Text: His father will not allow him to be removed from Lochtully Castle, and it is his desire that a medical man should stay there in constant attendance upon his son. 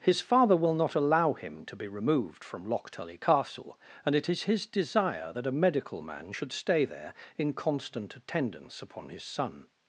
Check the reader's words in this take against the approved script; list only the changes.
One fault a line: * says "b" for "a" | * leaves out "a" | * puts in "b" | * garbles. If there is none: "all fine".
all fine